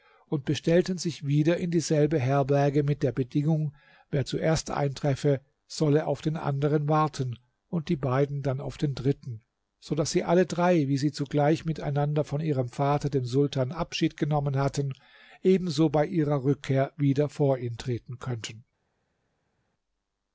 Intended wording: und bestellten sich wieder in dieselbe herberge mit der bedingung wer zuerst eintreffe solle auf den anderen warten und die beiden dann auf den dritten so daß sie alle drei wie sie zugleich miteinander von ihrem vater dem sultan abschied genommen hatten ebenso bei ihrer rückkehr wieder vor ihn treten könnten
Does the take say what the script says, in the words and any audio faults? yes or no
yes